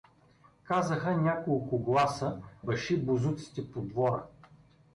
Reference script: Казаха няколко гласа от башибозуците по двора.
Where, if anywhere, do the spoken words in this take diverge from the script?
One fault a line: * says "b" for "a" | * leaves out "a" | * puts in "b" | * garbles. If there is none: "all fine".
* leaves out "от"